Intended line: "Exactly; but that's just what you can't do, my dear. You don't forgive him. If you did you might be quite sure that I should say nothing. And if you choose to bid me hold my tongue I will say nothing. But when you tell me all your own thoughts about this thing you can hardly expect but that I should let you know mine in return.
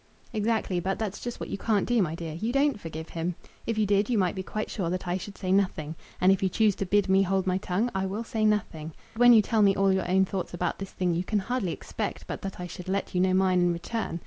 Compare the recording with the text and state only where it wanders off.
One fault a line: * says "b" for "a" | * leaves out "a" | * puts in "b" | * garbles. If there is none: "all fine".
* leaves out "But"